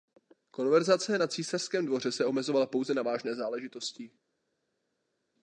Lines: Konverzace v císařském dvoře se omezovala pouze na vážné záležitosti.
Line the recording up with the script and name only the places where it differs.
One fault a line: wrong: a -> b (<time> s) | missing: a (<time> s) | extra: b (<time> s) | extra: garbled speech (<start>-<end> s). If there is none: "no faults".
wrong: v -> na (1.2 s)